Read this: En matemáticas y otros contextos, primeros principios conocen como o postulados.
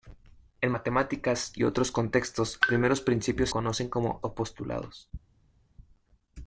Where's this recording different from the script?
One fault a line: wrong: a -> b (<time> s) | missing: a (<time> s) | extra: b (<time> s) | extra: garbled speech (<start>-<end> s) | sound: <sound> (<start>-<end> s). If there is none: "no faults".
no faults